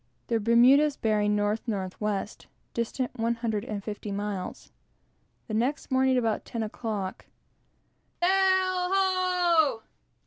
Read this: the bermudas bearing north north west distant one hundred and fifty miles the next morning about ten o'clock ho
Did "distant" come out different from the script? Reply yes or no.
no